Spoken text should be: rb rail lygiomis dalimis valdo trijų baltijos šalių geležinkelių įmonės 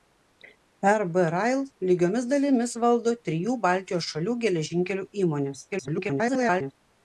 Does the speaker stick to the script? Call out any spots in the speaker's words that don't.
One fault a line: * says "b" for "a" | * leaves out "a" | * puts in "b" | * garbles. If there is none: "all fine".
* garbles